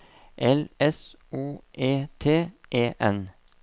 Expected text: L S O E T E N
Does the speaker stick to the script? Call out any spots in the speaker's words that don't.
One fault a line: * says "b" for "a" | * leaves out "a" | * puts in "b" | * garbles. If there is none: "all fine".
all fine